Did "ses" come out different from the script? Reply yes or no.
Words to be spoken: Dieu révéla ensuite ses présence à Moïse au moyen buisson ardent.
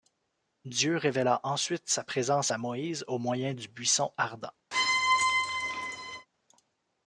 yes